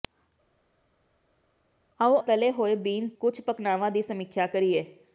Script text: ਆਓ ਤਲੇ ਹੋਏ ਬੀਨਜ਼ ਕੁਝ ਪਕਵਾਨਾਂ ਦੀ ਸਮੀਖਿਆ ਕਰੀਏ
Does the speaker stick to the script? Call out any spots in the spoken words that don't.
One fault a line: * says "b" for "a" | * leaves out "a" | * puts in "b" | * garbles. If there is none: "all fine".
all fine